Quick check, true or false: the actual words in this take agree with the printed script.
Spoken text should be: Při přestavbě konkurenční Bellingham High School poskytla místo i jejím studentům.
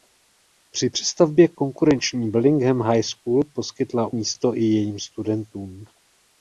true